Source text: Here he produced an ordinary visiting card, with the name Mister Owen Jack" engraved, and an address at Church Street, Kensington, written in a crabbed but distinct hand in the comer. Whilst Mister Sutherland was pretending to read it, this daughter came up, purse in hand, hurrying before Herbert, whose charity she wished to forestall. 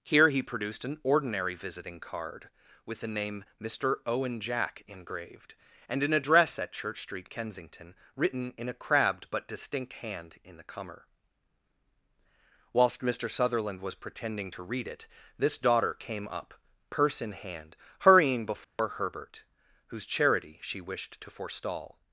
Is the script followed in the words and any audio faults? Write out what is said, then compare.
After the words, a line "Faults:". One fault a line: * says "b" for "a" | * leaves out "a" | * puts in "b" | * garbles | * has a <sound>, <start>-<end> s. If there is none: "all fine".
Here he produced an ordinary visiting card, with the name Mister Owen Jack" engraved, and an address at Church Street, Kensington, written in a crabbed but distinct hand in the comer. Whilst Mister Sutherland was pretending to read it, this daughter came up, purse in hand, hurrying before Herbert, whose charity she wished to forestall.
Faults:
* has a dropout, 18.6-18.8 s